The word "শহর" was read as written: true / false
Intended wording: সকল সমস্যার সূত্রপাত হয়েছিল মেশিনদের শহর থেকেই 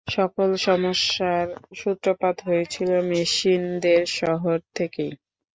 true